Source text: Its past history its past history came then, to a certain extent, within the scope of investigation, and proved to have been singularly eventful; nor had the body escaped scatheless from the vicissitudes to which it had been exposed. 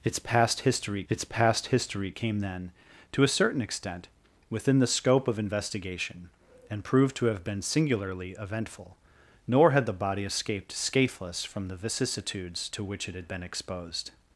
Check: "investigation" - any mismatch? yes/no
no